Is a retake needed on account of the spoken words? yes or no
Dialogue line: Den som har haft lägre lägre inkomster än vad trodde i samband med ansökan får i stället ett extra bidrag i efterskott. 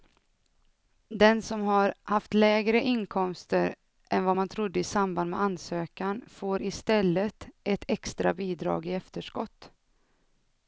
yes